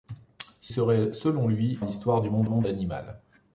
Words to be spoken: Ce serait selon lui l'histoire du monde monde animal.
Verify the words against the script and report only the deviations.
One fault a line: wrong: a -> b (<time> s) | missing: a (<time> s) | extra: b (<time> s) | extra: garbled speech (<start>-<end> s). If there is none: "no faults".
no faults